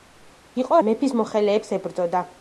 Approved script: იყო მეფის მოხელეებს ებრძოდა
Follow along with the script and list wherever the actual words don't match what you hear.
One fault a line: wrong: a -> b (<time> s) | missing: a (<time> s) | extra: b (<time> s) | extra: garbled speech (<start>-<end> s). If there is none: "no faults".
no faults